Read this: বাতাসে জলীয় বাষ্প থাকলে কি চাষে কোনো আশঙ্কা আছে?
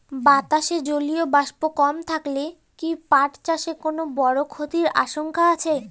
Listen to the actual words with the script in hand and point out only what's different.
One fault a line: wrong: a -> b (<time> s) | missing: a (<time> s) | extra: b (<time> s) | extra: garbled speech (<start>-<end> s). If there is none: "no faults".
extra: কম (1.8 s)
extra: পাট (3.1 s)
extra: বড় ক্ষতির (4.2 s)